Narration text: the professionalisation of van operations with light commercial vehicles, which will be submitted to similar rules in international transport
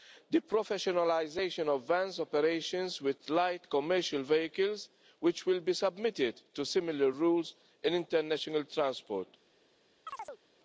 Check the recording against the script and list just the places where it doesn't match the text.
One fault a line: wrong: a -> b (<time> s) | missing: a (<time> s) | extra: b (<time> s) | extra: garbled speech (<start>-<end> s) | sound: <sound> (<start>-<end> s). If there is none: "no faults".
sound: chirp (10.1-10.4 s)